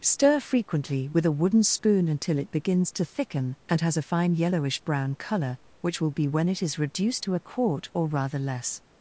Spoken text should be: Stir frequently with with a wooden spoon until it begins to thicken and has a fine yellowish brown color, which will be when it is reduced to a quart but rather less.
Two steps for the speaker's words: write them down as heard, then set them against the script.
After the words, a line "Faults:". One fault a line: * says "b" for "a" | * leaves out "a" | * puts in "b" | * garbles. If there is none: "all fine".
Stir frequently with a wooden spoon until it begins to thicken and has a fine yellowish brown color, which will be when it is reduced to a quart or rather less.
Faults:
* leaves out "with"
* says "or" for "but"